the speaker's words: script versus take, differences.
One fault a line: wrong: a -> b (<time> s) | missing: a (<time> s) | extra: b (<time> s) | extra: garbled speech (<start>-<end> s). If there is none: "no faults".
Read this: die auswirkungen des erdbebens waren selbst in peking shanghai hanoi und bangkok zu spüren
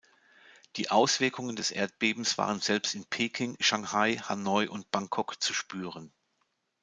no faults